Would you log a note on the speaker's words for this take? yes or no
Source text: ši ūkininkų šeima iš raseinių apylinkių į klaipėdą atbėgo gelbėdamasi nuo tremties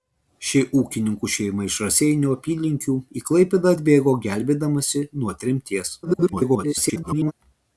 yes